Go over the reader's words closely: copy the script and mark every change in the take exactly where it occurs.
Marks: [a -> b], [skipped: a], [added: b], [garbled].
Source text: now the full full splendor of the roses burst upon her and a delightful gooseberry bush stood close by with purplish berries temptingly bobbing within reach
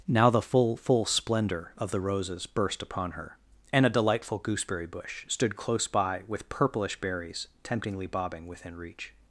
now the full full splendor of the roses burst upon her and a delightful gooseberry bush stood close by with purplish berries temptingly bobbing within reach